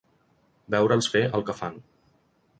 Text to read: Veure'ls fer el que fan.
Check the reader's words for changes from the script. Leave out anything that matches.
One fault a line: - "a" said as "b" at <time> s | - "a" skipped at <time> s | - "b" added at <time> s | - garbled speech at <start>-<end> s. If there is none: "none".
none